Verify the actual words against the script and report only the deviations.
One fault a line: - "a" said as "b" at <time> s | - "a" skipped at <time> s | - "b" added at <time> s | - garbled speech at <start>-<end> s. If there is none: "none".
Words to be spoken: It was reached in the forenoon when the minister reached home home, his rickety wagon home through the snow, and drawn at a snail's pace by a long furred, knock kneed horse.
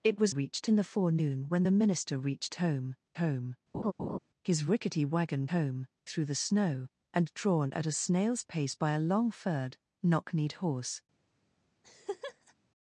none